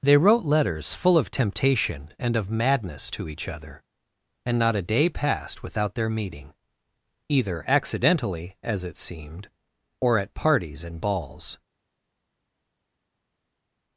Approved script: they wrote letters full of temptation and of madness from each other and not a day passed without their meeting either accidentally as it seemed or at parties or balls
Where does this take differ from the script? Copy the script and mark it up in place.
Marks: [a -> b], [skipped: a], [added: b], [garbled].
they wrote letters full of temptation and of madness [from -> to] each other and not a day passed without their meeting either accidentally as it seemed or at parties [or -> and] balls